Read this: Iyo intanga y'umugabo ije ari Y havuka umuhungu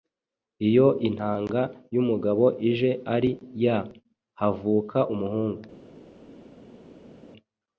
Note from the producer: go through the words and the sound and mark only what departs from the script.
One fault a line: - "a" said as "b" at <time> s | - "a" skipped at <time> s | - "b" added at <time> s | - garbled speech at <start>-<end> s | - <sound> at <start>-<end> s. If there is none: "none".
none